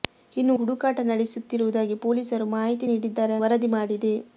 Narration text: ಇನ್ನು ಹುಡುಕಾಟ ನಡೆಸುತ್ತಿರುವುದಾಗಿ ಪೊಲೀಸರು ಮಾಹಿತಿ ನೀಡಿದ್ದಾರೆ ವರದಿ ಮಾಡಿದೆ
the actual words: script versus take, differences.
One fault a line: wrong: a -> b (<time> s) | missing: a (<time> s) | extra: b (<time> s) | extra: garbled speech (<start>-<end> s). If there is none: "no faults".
no faults